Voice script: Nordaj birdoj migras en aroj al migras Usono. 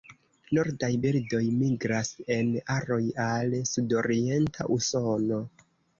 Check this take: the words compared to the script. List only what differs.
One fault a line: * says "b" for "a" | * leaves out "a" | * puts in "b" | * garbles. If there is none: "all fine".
* says "sudorienta" for "migras"